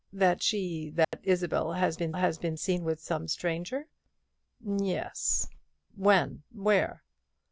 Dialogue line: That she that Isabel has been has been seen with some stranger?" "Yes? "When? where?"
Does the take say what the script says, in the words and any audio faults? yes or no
no